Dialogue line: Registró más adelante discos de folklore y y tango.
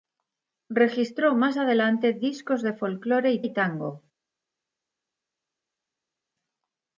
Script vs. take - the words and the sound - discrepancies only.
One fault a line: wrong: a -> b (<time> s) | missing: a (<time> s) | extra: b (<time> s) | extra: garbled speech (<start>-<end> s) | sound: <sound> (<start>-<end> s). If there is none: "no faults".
no faults